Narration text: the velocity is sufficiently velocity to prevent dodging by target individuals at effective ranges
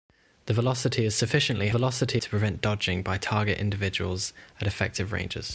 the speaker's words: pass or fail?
pass